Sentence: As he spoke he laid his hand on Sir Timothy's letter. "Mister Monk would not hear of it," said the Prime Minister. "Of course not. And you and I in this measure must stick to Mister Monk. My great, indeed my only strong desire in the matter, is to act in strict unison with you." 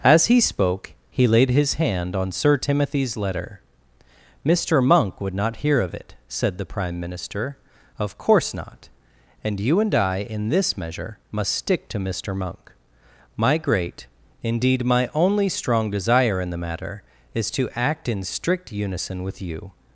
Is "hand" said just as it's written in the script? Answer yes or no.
yes